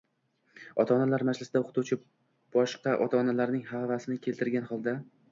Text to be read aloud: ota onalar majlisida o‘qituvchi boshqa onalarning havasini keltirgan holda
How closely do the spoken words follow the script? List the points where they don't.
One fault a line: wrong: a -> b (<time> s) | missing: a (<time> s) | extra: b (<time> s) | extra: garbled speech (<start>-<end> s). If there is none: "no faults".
extra: ota (3.1 s)